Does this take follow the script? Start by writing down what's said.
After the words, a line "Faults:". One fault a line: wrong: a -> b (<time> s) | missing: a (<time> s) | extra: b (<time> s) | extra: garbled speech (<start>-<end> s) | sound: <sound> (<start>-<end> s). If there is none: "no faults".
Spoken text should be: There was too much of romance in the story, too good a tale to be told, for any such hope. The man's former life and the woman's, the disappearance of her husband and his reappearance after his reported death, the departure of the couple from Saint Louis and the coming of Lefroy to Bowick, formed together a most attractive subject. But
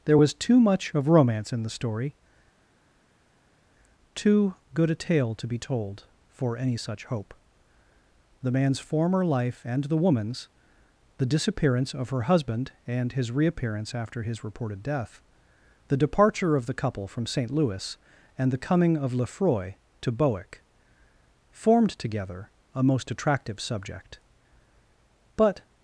There was too much of romance in the story, too good a tale to be told, for any such hope. The man's former life and the woman's, the disappearance of her husband and his reappearance after his reported death, the departure of the couple from Saint Louis and the coming of Lefroy to Bowick, formed together a most attractive subject. But
Faults:
no faults